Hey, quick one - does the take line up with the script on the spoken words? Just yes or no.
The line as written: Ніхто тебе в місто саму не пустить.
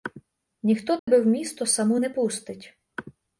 yes